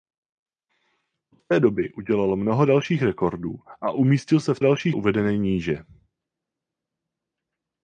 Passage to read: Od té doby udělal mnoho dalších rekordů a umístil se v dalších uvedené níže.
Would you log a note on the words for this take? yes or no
no